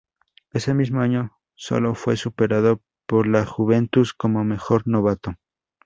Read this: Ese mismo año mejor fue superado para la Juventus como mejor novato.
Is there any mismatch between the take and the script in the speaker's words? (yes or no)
yes